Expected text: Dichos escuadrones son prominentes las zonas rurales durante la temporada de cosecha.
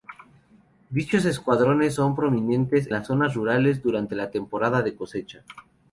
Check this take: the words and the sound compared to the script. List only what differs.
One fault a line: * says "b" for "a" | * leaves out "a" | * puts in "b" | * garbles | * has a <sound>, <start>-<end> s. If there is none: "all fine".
all fine